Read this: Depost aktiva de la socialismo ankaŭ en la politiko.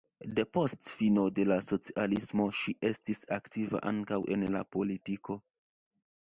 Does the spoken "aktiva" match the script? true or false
false